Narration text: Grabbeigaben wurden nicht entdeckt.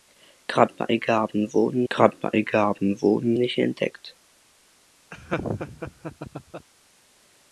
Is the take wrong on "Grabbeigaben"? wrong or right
right